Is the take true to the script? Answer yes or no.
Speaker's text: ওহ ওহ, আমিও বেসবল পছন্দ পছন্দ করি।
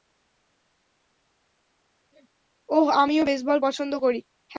no